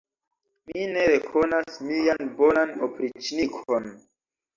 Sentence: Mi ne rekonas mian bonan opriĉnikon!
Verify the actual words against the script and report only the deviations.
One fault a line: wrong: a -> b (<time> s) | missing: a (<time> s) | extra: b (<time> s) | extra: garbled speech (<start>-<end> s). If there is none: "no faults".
no faults